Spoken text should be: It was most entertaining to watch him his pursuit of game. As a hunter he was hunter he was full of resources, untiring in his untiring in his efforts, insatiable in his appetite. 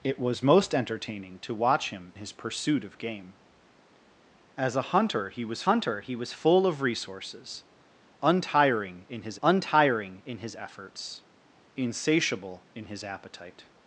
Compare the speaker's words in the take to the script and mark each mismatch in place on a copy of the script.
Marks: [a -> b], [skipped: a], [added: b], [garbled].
It was most entertaining to watch him his pursuit of game. As a hunter he was hunter he was full of resources, untiring in his untiring in his efforts, insatiable in his appetite.